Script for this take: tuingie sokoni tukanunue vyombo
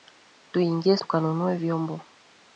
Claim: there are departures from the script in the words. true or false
true